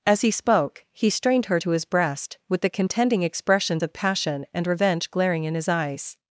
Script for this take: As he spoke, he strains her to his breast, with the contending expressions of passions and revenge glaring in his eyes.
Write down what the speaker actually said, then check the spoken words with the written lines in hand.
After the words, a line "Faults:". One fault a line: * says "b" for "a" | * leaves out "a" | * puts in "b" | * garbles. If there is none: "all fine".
As he spoke, he strained her to his breast, with the contending expressions of passion and revenge glaring in his eyes.
Faults:
* says "strained" for "strains"
* says "passion" for "passions"